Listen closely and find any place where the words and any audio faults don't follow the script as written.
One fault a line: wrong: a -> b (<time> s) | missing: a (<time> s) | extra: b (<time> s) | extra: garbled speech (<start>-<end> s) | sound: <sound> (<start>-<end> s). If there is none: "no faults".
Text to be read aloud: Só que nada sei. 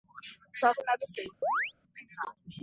sound: chirp (1.4-1.7 s)